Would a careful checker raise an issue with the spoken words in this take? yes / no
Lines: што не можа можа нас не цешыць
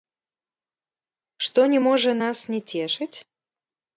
yes